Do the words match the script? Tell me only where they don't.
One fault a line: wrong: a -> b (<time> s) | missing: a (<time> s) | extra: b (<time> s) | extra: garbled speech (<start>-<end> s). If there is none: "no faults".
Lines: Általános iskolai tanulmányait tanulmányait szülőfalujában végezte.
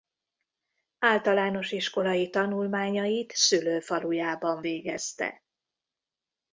missing: tanulmányait (3.3 s)